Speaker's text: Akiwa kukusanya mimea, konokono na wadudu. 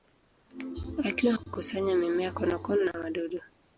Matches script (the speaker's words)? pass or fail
pass